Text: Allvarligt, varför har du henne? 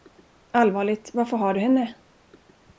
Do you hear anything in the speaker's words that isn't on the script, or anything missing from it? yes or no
no